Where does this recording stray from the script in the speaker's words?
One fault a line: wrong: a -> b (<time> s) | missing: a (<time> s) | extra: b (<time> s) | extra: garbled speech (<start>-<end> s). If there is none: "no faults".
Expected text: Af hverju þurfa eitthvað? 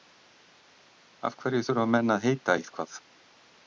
extra: menn að heita (2.0 s)